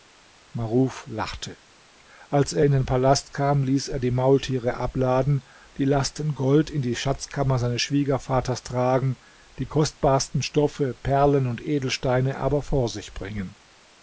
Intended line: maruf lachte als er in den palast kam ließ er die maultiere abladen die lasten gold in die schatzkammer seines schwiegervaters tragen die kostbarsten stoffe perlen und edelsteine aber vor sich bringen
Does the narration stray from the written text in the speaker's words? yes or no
no